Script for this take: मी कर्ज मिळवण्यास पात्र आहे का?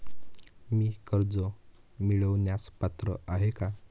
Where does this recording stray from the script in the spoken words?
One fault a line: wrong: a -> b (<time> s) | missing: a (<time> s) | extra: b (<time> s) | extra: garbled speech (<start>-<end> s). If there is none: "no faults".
no faults